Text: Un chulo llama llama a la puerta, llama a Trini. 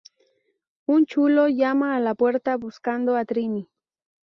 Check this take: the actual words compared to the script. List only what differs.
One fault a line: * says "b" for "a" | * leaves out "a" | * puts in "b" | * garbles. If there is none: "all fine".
* leaves out "llama"
* says "buscando" for "llama"